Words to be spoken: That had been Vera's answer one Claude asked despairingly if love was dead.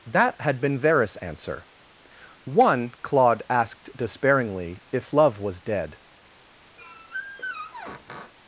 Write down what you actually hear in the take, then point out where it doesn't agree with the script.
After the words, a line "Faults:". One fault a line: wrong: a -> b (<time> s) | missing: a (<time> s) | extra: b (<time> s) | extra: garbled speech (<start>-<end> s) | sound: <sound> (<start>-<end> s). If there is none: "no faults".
That had been Vera's answer one Claude asked despairingly if love was dead.
Faults:
sound: squeak (6.8-8.3 s)